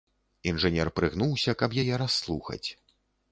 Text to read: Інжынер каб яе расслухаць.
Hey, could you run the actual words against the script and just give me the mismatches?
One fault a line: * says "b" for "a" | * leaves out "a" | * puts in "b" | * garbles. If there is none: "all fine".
* puts in "прыгнуўся"